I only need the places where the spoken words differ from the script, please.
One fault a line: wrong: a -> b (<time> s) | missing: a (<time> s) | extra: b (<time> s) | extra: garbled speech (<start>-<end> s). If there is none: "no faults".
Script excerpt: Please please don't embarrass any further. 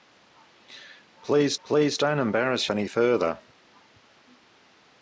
no faults